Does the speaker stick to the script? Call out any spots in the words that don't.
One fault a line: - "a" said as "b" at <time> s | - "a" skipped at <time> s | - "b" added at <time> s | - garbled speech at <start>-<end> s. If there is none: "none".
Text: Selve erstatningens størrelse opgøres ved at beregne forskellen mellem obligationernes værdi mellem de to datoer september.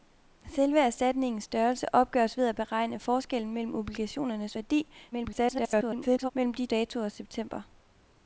- garbled speech at 5.1-6.3 s
- "to" skipped at 6.7 s